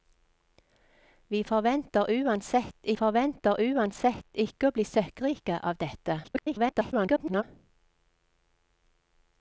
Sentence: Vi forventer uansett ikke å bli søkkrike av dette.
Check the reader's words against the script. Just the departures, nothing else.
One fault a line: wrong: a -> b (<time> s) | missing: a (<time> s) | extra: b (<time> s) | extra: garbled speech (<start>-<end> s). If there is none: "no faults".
extra: forventer uansett (3.0 s)
extra: garbled speech (6.2-7.4 s)